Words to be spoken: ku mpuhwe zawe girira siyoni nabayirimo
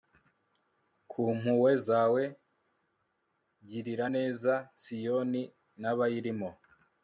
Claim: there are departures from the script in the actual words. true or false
true